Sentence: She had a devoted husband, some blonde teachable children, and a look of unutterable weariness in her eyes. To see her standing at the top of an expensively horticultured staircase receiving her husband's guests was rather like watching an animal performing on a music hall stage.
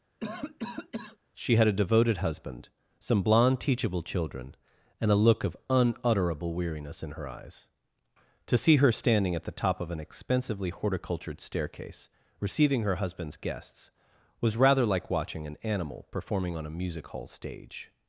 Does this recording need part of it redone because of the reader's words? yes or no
no